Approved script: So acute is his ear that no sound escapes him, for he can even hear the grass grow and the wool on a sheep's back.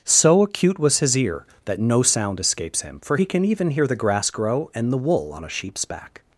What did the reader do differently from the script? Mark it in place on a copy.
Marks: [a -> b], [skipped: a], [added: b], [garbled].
So acute [is -> was] his ear that no sound escapes him, for he can even hear the grass grow and the wool on a sheep's back.